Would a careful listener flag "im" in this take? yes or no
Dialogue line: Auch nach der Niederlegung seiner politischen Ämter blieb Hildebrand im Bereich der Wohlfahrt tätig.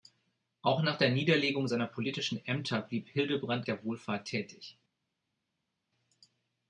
yes